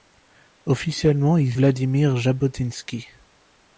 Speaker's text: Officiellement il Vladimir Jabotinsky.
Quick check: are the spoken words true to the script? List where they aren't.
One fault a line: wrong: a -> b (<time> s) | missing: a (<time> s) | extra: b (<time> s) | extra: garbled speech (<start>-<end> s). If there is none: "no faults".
no faults